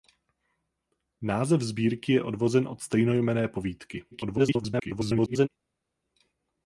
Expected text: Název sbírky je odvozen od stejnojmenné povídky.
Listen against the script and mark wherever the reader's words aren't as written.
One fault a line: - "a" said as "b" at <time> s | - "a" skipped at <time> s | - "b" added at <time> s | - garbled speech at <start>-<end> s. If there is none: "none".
- garbled speech at 4.1-5.5 s